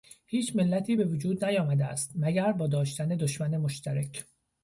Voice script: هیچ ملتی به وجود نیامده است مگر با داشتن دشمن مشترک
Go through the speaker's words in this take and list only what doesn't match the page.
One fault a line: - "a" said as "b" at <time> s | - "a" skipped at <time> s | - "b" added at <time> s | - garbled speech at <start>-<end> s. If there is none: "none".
none